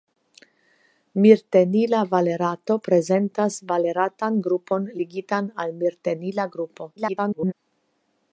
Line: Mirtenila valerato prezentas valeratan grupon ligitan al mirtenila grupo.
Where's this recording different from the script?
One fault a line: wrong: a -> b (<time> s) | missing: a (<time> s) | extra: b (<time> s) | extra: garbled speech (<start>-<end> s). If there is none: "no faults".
extra: garbled speech (7.0-7.5 s)